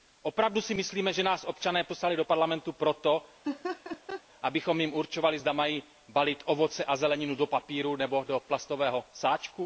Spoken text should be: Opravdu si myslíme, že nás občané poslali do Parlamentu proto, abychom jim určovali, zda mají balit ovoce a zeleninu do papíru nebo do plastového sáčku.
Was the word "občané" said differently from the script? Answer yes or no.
no